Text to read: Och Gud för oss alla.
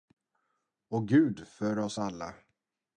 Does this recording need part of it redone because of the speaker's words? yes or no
no